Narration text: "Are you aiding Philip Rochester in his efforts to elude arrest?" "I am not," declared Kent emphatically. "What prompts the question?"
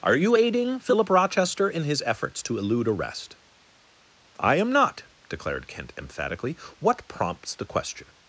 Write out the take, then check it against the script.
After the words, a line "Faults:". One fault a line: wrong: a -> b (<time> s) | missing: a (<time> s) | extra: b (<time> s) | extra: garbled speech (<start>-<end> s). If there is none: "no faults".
"Are you aiding Philip Rochester in his efforts to elude arrest?" "I am not," declared Kent emphatically. "What prompts the question?"
Faults:
no faults